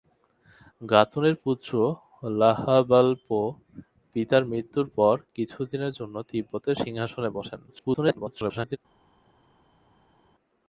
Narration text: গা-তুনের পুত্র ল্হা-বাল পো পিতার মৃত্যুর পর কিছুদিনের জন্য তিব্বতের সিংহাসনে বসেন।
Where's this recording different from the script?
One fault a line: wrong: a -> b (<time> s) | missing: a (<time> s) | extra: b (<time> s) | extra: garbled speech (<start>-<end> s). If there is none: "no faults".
extra: garbled speech (7.7-8.8 s)